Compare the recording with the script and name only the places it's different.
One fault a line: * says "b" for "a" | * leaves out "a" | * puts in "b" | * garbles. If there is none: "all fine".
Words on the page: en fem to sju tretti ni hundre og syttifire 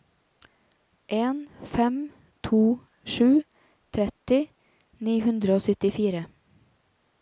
all fine